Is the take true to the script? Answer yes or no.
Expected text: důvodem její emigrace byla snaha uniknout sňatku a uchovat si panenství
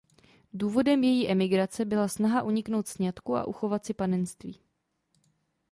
yes